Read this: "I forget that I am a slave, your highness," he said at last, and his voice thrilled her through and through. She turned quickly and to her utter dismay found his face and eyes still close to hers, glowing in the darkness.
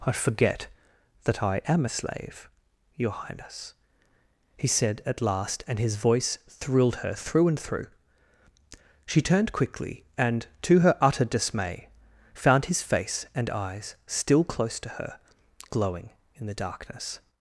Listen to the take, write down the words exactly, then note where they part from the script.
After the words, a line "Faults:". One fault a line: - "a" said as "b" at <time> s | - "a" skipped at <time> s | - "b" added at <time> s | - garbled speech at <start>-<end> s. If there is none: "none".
"I forget that I am a slave, your highness," he said at last, and his voice thrilled her through and through. She turned quickly and to her utter dismay found his face and eyes still close to her, glowing in the darkness.
Faults:
- "hers" said as "her" at 14.9 s